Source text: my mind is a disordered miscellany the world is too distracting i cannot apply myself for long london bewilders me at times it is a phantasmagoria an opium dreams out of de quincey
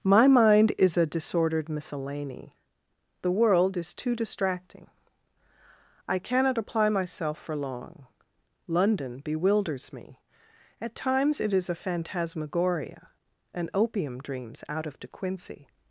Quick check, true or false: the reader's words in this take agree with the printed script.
true